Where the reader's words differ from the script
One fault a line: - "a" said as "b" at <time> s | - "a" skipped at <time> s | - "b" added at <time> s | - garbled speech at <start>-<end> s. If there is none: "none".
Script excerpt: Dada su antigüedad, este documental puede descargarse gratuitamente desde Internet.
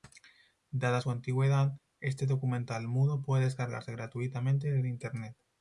- "mudo" added at 2.9 s